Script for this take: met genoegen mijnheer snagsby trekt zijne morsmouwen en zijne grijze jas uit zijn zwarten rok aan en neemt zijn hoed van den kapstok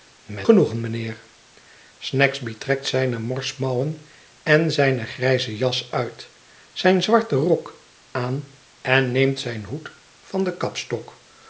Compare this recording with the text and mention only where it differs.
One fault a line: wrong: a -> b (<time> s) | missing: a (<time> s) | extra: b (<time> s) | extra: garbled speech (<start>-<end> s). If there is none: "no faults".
no faults